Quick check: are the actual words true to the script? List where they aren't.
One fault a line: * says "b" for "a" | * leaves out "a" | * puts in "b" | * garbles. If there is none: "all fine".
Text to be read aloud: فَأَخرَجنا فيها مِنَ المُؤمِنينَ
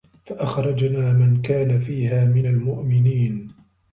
* puts in "مَن كانَ"